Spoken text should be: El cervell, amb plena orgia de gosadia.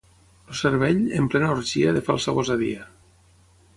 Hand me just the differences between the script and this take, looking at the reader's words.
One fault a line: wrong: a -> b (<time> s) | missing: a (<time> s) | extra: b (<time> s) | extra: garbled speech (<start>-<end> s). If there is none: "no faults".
wrong: amb -> en (1.2 s)
extra: falsa (2.1 s)